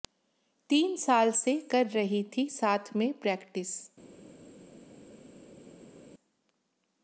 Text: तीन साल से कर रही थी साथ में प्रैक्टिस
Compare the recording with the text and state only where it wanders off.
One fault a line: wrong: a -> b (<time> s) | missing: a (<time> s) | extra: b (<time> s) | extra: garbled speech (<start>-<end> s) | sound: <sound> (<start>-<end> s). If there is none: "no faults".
no faults